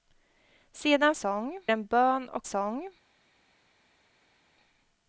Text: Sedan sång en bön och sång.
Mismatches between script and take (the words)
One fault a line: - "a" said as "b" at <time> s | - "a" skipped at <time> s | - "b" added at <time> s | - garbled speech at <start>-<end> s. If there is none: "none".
none